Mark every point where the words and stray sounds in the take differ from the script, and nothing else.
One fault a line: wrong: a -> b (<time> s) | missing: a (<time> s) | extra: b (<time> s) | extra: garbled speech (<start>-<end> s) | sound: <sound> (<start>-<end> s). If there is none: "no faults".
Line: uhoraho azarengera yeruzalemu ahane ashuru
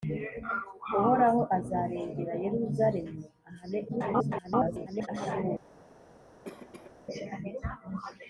extra: garbled speech (3.9-5.1 s)
sound: cough (6.4-6.9 s)